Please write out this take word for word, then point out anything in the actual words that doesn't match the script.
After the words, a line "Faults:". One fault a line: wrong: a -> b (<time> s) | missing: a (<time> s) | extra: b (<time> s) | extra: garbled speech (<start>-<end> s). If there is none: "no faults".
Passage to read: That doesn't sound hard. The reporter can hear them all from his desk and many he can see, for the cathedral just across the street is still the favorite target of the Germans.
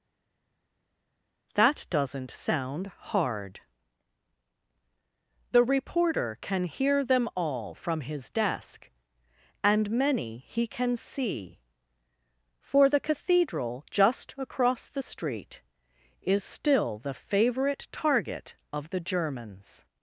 That doesn't sound hard. The reporter can hear them all from his desk and many he can see, for the cathedral just across the street is still the favorite target of the Germans.
Faults:
no faults